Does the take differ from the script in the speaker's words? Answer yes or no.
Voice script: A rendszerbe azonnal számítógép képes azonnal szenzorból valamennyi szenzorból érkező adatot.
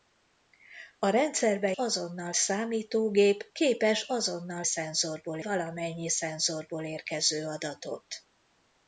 no